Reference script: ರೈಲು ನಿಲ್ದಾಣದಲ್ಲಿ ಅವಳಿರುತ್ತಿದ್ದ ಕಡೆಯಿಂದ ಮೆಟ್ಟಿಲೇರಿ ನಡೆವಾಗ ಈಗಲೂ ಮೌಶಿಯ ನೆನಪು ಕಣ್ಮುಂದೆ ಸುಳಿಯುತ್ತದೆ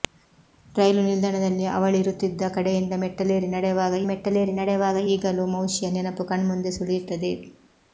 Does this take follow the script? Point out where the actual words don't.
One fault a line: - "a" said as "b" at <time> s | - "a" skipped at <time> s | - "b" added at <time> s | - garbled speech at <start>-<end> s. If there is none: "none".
- "ಮೆಟ್ಟಿಲೇರಿ ನಡೆವಾಗ" added at 4.1 s